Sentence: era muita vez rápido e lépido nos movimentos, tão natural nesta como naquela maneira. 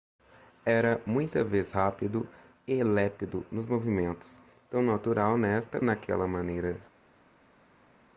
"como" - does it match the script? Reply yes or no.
no